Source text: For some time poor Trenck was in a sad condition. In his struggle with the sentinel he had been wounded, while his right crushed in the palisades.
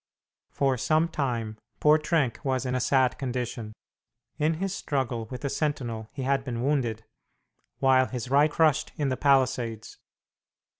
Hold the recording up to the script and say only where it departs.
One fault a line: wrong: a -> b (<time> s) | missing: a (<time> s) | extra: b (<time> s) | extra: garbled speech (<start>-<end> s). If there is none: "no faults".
no faults